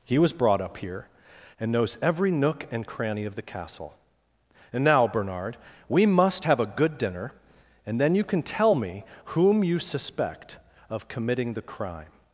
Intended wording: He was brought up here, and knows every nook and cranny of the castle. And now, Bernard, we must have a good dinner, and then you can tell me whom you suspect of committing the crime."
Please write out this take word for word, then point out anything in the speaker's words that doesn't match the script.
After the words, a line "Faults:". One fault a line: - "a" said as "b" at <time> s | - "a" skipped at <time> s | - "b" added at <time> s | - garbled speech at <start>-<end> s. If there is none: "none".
He was brought up here, and knows every nook and cranny of the castle. And now, Bernard, we must have a good dinner, and then you can tell me whom you suspect of committing the crime."
Faults:
none